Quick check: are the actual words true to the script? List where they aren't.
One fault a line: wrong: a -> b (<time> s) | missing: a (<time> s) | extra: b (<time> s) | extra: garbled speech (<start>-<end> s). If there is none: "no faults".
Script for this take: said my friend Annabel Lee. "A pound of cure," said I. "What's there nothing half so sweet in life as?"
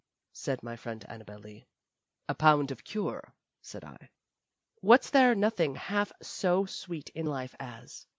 no faults